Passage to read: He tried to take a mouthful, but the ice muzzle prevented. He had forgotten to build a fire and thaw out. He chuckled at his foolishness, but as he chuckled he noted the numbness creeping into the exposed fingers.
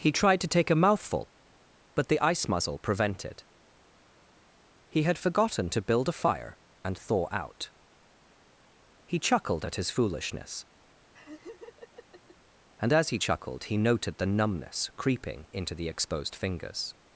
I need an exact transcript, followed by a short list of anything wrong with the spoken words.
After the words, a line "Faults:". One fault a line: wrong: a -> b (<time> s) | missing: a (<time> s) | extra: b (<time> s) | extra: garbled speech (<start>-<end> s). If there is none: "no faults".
He tried to take a mouthful, but the ice muzzle prevented. He had forgotten to build a fire and thaw out. He chuckled at his foolishness, and as he chuckled he noted the numbness creeping into the exposed fingers.
Faults:
wrong: but -> and (12.8 s)